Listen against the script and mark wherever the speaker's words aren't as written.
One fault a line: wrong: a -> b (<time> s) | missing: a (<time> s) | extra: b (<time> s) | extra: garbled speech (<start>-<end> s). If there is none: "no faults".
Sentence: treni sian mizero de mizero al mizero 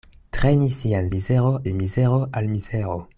no faults